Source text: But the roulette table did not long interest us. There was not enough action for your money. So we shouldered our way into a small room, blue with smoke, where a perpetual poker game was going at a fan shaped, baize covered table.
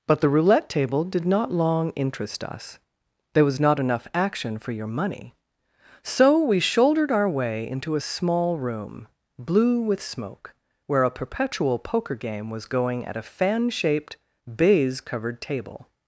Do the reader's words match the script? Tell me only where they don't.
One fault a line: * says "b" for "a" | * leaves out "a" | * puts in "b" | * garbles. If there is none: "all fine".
all fine